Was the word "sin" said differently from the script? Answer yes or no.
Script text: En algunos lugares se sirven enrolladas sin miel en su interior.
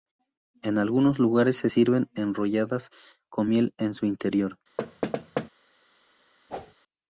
yes